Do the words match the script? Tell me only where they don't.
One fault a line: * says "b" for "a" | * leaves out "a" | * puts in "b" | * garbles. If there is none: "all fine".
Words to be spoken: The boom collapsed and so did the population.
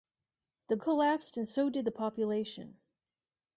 * leaves out "boom"